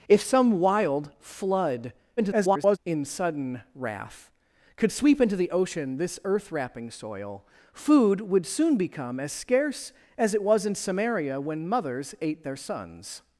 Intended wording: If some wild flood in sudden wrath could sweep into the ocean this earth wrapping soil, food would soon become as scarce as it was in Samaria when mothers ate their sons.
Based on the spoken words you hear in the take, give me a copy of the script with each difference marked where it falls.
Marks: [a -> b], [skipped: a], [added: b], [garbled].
If some wild flood [garbled] in sudden wrath could sweep into the ocean this earth wrapping soil, food would soon become as scarce as it was in Samaria when mothers ate their sons.